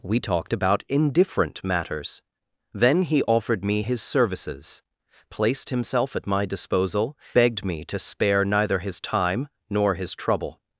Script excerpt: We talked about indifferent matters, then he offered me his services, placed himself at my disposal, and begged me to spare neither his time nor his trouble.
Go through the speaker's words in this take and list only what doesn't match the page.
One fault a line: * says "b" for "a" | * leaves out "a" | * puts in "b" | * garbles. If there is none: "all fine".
* leaves out "and"